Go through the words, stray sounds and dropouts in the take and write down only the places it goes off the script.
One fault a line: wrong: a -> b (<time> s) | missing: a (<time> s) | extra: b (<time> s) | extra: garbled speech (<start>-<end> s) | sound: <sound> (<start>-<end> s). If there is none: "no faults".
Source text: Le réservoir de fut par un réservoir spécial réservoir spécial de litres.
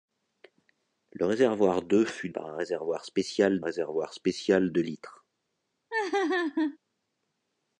sound: laugh (5.9-6.8 s)